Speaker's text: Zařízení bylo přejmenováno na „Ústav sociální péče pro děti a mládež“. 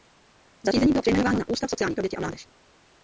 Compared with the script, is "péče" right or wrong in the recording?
wrong